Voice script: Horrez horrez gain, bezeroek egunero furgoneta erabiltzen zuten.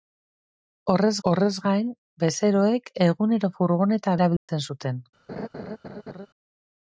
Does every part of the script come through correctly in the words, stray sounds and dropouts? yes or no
no